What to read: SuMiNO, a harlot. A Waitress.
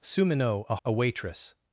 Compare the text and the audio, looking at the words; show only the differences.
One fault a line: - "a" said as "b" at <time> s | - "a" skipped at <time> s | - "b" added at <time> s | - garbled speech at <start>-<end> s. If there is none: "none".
- "harlot" skipped at 0.7 s